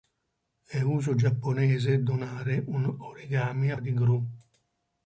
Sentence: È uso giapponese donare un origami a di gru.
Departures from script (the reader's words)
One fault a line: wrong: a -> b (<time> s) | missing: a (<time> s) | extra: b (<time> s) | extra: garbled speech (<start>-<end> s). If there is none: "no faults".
no faults